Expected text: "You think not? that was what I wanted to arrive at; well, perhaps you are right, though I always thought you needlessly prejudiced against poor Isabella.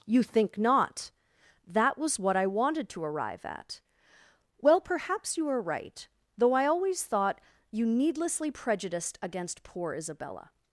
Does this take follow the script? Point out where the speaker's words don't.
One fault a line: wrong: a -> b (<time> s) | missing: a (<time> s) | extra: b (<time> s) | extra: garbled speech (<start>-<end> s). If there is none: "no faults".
no faults